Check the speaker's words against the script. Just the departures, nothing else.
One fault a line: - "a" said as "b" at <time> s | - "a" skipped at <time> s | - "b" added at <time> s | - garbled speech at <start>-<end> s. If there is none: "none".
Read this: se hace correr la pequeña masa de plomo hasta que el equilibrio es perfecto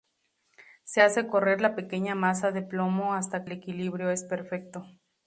- "que" skipped at 3.4 s